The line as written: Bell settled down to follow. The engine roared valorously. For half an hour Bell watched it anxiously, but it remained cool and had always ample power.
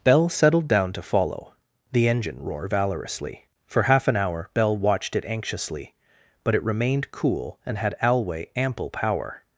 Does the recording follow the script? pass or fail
fail